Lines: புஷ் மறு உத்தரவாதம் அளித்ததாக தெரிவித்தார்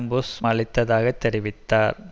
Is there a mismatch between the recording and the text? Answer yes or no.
yes